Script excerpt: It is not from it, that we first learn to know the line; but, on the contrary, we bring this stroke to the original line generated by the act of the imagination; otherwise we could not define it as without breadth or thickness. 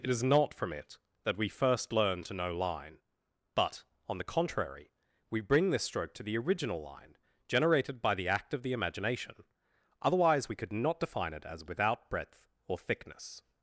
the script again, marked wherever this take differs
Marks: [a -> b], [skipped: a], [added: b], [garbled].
It is not from it, that we first learn to know [skipped: the] line; but, on the contrary, we bring this stroke to the original line generated by the act of the imagination; otherwise we could not define it as without breadth or thickness.